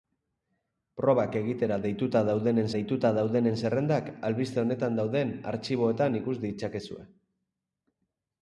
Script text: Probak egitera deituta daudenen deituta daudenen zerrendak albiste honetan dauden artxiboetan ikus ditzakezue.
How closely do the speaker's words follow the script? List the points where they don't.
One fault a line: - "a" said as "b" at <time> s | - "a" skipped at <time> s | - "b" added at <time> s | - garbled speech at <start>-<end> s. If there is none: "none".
none